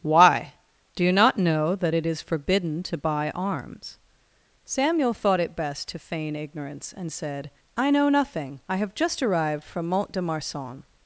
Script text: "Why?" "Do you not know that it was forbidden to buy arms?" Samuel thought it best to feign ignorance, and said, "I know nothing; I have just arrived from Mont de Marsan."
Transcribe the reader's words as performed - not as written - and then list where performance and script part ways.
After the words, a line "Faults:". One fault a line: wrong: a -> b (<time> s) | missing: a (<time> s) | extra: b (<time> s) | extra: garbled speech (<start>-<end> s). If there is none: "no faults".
"Why?" "Do you not know that it is forbidden to buy arms?" Samuel thought it best to feign ignorance, and said, "I know nothing; I have just arrived from Mont de Marsan."
Faults:
wrong: was -> is (2.0 s)